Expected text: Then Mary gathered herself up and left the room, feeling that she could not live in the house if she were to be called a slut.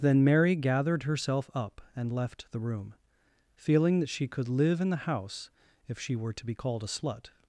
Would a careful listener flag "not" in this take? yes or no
yes